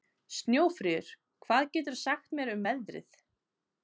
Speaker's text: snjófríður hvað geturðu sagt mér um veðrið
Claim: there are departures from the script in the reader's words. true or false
false